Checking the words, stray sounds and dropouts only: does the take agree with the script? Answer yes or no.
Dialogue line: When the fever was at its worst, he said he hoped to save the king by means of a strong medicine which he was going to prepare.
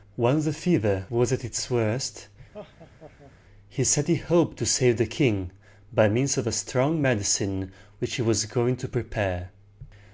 no